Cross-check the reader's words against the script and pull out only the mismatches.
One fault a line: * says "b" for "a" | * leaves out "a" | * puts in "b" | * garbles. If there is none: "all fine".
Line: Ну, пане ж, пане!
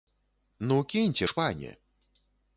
* says "кіньце" for "пане"